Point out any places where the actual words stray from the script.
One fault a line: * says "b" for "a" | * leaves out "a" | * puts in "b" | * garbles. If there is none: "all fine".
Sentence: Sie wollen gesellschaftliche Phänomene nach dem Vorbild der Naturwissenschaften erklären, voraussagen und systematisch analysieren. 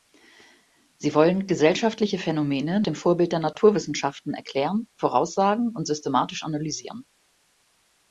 * leaves out "nach"